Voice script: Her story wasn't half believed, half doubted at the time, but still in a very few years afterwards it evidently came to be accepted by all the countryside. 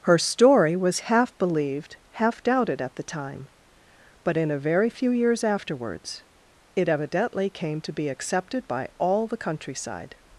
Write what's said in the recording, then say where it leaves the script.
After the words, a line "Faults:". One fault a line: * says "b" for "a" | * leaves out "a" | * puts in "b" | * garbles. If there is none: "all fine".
Her story was half believed, half doubted at the time, but in a very few years afterwards it evidently came to be accepted by all the countryside.
Faults:
* says "was" for "wasn't"
* leaves out "still"